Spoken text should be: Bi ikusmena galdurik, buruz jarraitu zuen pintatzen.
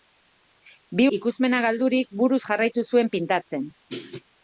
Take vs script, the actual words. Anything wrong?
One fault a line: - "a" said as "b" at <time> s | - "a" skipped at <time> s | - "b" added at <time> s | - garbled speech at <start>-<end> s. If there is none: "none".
none